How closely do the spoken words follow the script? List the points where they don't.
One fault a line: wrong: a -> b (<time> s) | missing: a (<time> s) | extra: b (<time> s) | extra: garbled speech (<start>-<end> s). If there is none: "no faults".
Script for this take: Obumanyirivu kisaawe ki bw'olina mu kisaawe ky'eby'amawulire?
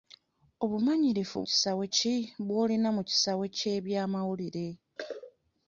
no faults